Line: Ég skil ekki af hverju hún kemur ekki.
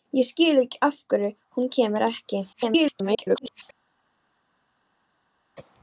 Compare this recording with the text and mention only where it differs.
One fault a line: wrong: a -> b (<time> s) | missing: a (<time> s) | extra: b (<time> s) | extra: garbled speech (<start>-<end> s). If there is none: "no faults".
extra: garbled speech (2.5-3.6 s)